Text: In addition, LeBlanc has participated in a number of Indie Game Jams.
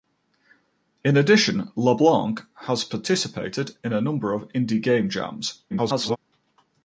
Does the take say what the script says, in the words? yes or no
no